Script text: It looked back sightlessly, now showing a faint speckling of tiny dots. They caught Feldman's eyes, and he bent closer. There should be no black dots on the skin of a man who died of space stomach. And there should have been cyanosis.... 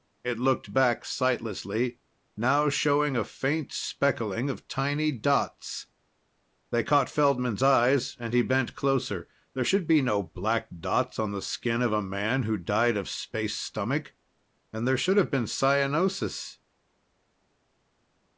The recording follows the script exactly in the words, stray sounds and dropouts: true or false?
true